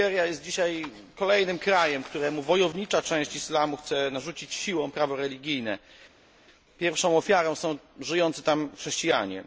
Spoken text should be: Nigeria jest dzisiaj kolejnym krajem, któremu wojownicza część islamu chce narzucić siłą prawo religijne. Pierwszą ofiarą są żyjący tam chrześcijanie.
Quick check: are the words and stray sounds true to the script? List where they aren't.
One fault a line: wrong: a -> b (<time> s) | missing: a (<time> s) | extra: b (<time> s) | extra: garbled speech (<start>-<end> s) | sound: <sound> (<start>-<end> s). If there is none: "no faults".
no faults